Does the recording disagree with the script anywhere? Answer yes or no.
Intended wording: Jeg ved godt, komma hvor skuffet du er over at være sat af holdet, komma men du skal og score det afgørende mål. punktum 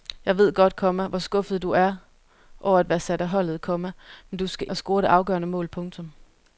no